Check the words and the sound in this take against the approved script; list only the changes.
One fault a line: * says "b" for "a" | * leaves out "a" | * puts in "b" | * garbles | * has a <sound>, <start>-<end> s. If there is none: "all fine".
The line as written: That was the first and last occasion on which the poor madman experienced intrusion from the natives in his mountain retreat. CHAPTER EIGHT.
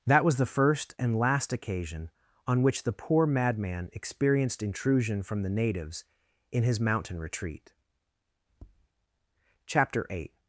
* has a tap, 8.5-8.9 s